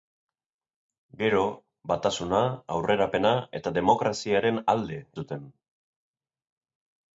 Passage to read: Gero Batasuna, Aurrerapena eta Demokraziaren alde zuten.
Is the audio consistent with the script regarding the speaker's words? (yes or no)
yes